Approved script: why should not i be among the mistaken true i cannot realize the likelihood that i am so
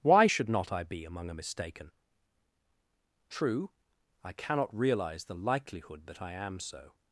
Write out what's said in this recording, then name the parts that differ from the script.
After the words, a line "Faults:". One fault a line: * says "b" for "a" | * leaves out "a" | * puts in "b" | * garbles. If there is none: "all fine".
why should not i be among a mistaken true i cannot realize the likelihood that i am so
Faults:
* says "a" for "the"